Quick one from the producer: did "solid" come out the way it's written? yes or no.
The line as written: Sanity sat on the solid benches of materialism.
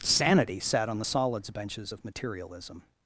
no